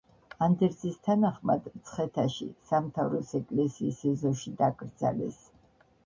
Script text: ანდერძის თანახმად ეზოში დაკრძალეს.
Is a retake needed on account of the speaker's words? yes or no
yes